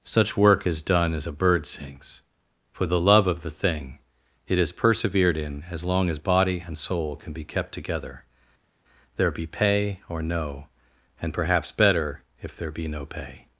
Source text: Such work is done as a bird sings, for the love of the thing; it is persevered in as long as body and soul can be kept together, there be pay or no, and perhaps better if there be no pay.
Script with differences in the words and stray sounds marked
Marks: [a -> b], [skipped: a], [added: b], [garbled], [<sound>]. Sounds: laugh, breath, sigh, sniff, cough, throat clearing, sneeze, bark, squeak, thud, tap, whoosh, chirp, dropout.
Such work is done as a bird sings, for the love of the thing; it is persevered in as long as body and soul can be kept together, there be pay or no, and perhaps better if there be no pay.